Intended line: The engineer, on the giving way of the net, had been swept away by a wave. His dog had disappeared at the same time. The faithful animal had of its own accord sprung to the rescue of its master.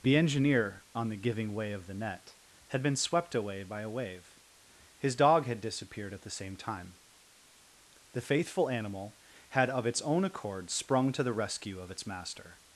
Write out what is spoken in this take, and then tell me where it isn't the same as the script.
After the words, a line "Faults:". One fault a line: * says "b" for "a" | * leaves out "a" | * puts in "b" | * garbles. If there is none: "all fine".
The engineer, on the giving way of the net, had been swept away by a wave. His dog had disappeared at the same time. The faithful animal had of its own accord sprung to the rescue of its master.
Faults:
all fine